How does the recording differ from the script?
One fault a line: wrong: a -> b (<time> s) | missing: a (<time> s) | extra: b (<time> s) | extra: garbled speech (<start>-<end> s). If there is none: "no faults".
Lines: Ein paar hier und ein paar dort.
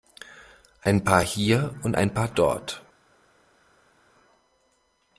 no faults